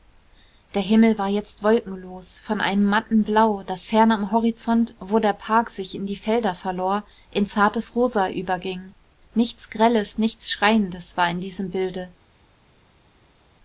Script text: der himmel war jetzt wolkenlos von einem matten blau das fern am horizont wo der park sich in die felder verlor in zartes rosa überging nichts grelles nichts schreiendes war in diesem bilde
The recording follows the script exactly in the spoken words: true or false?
true